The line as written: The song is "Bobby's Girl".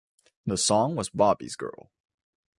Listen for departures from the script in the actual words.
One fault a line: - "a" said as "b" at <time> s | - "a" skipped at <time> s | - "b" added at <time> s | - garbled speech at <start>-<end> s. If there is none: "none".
- "is" said as "was" at 0.9 s